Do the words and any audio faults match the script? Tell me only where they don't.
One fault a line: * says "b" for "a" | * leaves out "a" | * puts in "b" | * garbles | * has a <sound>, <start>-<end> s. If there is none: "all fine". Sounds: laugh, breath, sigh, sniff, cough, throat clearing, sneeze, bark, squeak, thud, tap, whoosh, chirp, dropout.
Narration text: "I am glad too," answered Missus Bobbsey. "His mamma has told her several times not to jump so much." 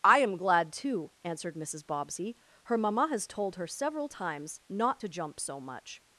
* says "Her" for "His"